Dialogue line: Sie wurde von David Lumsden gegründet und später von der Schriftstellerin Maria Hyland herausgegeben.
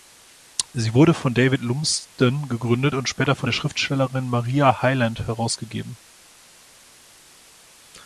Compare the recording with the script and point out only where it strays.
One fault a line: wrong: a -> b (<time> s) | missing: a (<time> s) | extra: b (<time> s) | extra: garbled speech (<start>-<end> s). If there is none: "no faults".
no faults